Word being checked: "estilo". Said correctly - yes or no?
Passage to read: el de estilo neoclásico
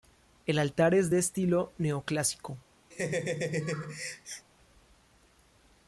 yes